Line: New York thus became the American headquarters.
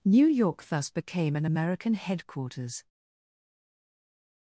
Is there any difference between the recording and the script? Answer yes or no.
yes